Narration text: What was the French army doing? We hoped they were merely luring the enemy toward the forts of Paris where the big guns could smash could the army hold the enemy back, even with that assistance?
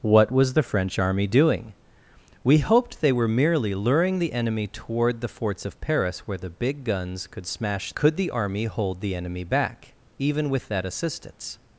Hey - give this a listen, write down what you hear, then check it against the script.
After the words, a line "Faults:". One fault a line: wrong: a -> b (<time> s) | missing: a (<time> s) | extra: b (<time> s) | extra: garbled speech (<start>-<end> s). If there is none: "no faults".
What was the French army doing? We hoped they were merely luring the enemy toward the forts of Paris where the big guns could smash could the army hold the enemy back, even with that assistance?
Faults:
no faults